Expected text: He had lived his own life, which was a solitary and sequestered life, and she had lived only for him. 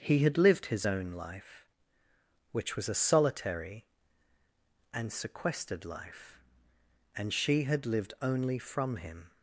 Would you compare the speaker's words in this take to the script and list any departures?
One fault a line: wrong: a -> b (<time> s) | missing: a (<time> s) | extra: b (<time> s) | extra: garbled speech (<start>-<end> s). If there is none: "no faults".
wrong: for -> from (8.6 s)